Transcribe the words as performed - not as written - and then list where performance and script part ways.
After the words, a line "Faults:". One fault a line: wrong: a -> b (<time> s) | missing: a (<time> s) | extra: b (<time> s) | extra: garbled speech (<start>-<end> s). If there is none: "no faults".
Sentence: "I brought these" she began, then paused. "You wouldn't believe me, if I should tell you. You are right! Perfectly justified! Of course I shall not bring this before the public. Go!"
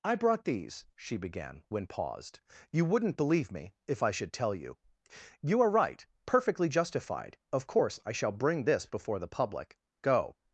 "I brought these" she began, when paused. "You wouldn't believe me, if I should tell you. You are right! Perfectly justified! Of course I shall bring this before the public. Go!"
Faults:
wrong: then -> when (1.7 s)
missing: not (8.3 s)